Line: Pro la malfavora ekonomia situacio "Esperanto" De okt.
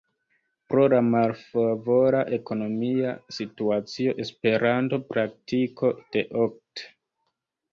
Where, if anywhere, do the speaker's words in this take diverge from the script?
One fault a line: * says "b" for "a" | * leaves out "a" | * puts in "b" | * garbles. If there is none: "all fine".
* puts in "Praktiko"